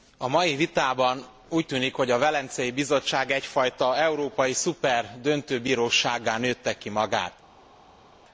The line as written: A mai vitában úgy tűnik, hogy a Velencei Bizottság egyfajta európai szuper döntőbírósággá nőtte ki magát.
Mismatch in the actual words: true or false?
false